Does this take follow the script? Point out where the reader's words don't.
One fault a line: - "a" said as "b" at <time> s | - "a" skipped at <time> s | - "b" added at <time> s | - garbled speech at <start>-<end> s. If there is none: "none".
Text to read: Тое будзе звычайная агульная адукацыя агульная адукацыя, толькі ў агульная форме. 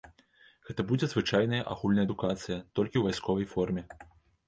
- "Тое" said as "Гэта" at 0.7 s
- "агульная адукацыя" skipped at 2.6 s
- "агульная" said as "вайсковай" at 3.1 s